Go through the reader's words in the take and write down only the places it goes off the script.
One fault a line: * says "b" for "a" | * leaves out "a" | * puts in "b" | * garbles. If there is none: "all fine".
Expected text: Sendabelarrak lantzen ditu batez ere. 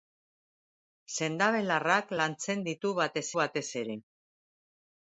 * puts in "batez"